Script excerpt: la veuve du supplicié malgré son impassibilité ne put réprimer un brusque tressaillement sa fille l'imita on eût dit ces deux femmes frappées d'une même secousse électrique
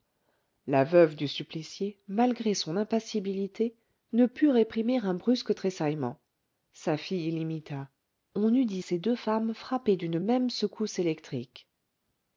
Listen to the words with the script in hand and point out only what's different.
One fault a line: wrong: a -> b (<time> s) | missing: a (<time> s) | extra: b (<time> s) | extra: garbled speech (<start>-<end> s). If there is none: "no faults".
no faults